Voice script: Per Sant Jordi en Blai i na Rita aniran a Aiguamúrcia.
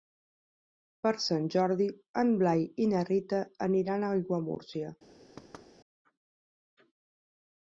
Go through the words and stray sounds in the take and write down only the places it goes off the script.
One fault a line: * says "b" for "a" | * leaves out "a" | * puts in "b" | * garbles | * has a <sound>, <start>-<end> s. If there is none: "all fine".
* has a thud, 5.4-5.7 s